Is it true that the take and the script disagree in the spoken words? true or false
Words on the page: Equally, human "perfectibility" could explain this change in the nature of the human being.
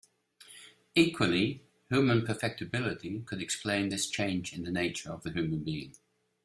false